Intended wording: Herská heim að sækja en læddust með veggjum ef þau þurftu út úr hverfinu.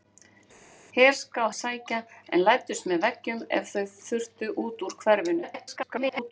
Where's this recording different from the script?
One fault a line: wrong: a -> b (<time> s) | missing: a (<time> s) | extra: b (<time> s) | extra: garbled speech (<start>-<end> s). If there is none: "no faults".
missing: heim (1.4 s)
extra: garbled speech (5.4-6.3 s)